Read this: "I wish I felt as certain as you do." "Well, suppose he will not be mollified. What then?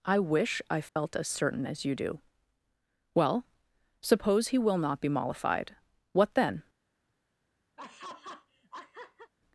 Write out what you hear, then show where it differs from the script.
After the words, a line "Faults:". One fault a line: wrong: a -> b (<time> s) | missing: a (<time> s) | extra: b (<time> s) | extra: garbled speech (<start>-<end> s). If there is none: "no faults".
"I wish I felt as certain as you do." "Well, suppose he will not be mollified. What then?
Faults:
no faults